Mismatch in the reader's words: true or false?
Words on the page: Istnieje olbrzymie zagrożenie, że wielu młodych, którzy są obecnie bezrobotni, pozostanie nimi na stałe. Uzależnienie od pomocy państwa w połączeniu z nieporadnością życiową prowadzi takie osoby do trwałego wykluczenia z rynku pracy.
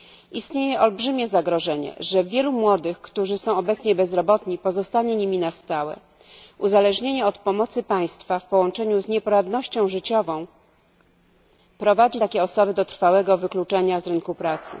false